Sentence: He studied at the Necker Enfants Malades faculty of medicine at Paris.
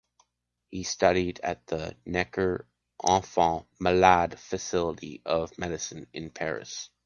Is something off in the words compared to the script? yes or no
yes